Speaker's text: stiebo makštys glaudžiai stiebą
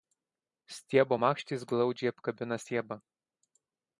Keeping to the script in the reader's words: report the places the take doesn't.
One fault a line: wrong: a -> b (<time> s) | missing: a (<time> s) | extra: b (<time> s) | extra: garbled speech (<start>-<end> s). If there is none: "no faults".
extra: apkabina (2.1 s)